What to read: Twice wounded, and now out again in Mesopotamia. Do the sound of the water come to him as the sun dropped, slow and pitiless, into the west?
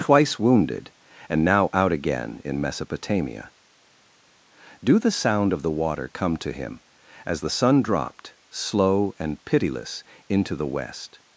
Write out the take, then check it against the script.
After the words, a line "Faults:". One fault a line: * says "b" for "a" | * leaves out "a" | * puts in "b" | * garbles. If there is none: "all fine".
Twice wounded, and now out again in Mesopotamia. Do the sound of the water come to him as the sun dropped, slow and pitiless, into the west?
Faults:
all fine